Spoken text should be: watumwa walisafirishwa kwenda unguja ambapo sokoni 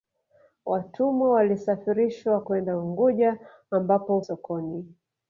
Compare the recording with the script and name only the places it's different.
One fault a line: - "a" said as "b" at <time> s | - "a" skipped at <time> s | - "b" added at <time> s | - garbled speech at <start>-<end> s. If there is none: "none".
none